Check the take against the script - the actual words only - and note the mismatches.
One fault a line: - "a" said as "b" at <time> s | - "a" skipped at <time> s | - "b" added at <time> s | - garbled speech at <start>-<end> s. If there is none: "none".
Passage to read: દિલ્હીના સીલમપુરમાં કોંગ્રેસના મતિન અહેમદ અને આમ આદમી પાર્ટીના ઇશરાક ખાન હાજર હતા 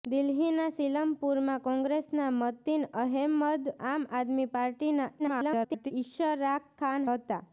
- "અને" skipped at 3.7 s
- garbled speech at 5.2-5.9 s
- "હાજર" skipped at 7.1 s